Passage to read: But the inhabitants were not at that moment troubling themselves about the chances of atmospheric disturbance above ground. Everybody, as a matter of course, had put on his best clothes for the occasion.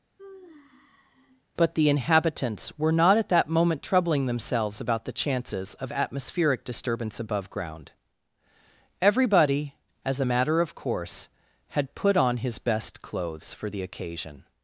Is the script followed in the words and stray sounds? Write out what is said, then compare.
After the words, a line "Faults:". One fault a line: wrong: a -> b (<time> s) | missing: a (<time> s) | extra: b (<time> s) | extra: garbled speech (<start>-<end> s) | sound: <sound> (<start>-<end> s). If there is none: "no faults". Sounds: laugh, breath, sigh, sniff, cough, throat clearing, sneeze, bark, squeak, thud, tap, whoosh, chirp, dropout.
But the inhabitants were not at that moment troubling themselves about the chances of atmospheric disturbance above ground. Everybody, as a matter of course, had put on his best clothes for the occasion.
Faults:
sound: sigh (0.2-1.4 s)